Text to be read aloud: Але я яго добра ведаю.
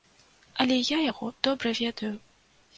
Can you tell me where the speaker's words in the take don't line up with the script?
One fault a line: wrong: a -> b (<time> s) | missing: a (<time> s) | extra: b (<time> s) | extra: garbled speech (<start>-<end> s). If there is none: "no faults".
no faults